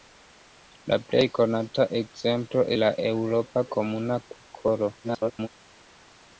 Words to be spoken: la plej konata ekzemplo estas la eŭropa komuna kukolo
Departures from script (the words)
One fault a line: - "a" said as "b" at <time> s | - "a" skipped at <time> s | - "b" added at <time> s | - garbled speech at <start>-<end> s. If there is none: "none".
- "estas" skipped at 2.6 s
- garbled speech at 5.0-5.5 s